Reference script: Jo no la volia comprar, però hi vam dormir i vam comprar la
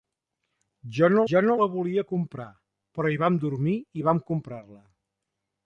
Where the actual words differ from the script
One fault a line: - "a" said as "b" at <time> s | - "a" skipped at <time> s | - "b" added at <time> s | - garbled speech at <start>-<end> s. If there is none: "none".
- "jo no" added at 1.3 s